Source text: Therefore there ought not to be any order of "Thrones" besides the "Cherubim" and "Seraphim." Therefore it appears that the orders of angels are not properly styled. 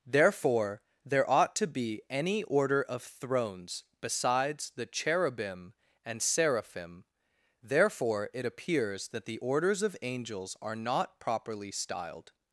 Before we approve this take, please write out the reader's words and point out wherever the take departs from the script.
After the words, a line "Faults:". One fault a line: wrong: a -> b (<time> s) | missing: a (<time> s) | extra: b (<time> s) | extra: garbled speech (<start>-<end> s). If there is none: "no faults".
Therefore there ought to be any order of "Thrones" besides the "Cherubim" and "Seraphim." Therefore it appears that the orders of angels are not properly styled.
Faults:
missing: not (1.6 s)